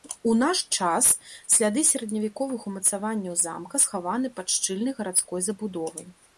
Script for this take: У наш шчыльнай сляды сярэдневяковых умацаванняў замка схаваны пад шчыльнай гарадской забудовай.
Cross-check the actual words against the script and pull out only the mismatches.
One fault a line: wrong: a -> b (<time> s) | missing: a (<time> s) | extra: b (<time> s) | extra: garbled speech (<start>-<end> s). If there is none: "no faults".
wrong: шчыльнай -> час (0.8 s)